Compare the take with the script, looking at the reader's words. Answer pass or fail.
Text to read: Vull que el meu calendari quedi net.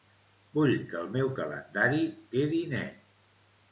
pass